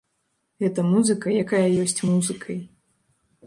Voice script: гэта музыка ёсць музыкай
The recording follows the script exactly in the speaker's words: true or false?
false